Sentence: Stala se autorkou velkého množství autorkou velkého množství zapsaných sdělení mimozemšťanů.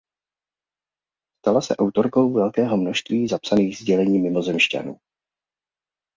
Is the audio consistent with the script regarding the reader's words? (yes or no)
no